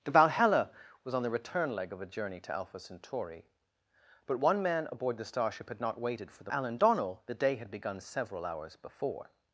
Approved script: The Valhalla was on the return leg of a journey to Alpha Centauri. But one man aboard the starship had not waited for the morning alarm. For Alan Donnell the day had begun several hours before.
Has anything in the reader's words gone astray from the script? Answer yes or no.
yes